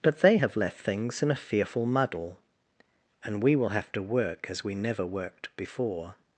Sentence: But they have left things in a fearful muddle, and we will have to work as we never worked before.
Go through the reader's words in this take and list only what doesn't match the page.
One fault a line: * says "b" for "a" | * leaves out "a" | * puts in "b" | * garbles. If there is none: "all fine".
all fine